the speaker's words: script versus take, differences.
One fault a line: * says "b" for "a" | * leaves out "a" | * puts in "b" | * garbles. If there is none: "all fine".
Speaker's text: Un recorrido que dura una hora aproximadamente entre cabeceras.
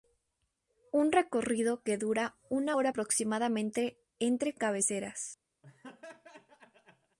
all fine